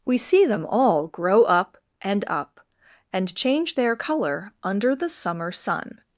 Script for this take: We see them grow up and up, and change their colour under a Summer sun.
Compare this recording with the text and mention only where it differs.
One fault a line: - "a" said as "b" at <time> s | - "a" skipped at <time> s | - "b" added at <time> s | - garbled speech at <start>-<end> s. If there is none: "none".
- "all" added at 0.7 s
- "a" said as "the" at 4.9 s